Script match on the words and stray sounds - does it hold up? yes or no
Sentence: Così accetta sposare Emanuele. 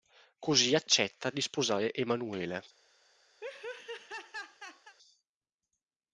no